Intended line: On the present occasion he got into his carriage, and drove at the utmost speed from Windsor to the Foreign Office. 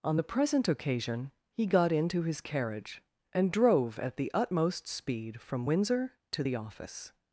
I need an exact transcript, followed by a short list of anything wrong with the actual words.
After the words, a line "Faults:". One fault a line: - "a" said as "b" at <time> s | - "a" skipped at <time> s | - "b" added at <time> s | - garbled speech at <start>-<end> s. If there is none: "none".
On the present occasion he got into his carriage, and drove at the utmost speed from Windsor to the Office.
Faults:
- "Foreign" skipped at 6.6 s